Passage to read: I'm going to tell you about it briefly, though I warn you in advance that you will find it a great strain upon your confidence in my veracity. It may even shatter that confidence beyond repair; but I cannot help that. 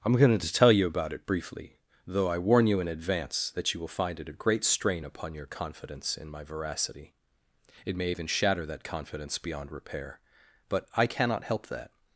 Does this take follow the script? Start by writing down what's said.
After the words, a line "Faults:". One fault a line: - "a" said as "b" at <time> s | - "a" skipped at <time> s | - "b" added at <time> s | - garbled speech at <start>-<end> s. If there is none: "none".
I'm going to tell you about it briefly, though I warn you in advance that you will find it a great strain upon your confidence in my veracity. It may even shatter that confidence beyond repair; but I cannot help that.
Faults:
none